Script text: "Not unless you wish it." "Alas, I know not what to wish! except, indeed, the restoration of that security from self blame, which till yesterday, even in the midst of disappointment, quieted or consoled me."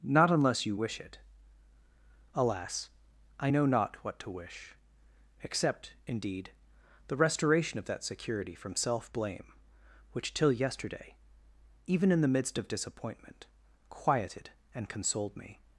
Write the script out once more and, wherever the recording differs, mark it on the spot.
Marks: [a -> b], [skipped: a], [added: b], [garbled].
"Not unless you wish it." "Alas, I know not what to wish! except, indeed, the restoration of that security from self blame, which till yesterday, even in the midst of disappointment, quieted [or -> and] consoled me."